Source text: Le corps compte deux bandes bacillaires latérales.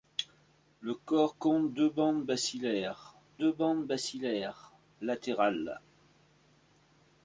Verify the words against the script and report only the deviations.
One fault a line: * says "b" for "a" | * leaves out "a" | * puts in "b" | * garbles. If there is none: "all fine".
* puts in "deux bandes bacillaires"